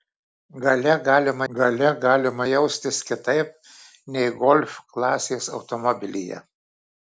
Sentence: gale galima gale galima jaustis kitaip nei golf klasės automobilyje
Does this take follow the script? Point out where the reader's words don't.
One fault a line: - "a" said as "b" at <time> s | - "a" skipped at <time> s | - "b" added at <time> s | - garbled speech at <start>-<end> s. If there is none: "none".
none